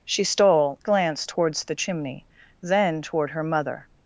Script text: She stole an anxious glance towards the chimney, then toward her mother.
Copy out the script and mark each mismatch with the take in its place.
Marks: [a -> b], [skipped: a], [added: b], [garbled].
She stole [skipped: an anxious] glance towards the chimney, then toward her mother.